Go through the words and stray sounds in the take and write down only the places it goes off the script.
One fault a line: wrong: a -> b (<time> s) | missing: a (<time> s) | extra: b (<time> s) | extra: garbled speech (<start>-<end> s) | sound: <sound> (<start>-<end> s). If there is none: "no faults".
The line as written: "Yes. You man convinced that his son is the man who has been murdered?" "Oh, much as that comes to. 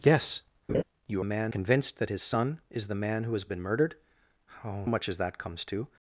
sound: laugh (0.7-0.8 s)